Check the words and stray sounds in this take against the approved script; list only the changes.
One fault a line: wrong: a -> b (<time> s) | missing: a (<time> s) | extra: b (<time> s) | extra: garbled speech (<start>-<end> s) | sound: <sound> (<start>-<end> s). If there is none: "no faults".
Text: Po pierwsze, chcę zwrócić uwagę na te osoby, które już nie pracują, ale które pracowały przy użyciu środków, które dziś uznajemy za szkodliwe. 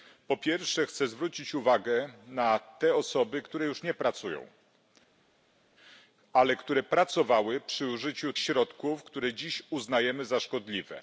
no faults